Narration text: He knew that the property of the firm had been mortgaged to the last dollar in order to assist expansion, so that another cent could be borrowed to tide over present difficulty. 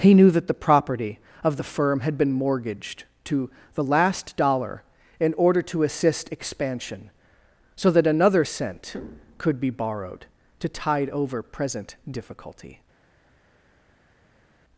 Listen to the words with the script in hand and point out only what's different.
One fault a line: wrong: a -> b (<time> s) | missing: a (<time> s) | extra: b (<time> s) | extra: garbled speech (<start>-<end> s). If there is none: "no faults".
no faults